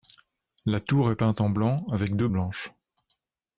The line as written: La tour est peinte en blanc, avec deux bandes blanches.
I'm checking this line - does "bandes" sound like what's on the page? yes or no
no